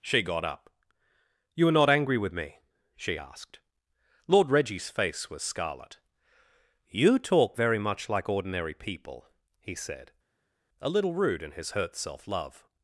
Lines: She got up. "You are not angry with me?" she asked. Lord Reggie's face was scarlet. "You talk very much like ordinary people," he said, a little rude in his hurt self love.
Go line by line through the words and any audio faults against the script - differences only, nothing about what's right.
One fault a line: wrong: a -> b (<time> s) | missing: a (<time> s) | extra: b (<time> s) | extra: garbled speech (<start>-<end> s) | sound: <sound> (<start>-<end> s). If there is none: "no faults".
no faults